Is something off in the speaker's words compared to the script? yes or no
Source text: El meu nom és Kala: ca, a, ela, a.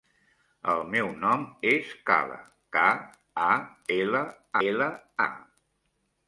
yes